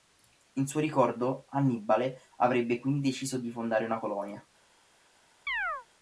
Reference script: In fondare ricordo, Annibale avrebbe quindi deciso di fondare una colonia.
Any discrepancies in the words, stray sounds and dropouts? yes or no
yes